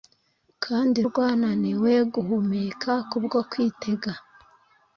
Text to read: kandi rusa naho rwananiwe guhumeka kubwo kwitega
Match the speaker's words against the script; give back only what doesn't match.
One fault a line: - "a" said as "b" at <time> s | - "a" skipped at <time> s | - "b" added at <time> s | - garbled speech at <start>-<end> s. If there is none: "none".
- "rusa naho" skipped at 1.0 s